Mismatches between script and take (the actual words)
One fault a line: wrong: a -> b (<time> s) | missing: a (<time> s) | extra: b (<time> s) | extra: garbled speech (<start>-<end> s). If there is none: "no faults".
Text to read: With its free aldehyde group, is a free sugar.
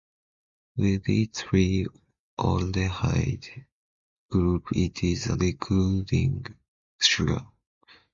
extra: it (4.7 s)
wrong: free -> reducing (5.3 s)